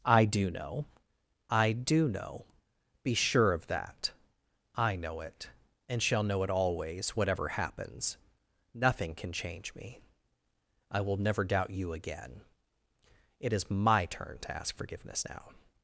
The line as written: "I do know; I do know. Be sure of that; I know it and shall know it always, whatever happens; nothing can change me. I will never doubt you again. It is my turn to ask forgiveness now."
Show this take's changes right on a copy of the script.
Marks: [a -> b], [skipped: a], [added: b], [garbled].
"I do know; I do know. Be sure of that; I know it and shall know it always, whatever happens; nothing can change me. I will never doubt you again. It is my turn to ask forgiveness now."